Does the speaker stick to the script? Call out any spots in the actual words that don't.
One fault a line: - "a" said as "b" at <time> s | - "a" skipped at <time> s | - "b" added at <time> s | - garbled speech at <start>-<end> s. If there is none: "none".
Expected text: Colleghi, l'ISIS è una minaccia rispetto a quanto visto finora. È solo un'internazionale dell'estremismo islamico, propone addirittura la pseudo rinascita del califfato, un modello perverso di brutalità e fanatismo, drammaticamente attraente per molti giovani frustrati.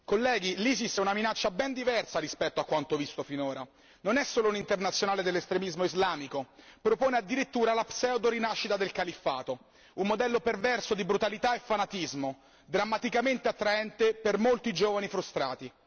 - "ben diversa" added at 1.5 s
- "Non" added at 4.0 s